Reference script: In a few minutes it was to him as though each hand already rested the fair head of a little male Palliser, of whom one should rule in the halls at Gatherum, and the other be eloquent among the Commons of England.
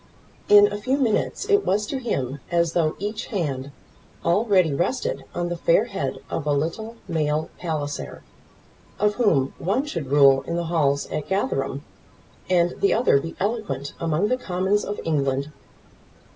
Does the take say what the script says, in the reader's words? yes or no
no